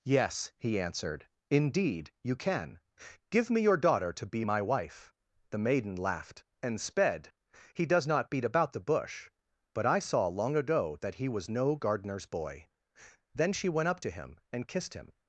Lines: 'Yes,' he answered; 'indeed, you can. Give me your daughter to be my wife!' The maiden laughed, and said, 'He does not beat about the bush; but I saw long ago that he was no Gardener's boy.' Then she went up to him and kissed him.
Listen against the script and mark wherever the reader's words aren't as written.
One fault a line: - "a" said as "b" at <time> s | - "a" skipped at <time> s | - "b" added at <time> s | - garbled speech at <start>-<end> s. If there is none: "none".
- "said" said as "sped" at 6.8 s